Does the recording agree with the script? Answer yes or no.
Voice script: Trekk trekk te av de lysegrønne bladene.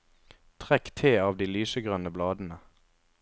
no